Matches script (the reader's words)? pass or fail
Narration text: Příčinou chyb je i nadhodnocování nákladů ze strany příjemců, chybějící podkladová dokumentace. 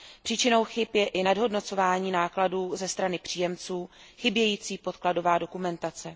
pass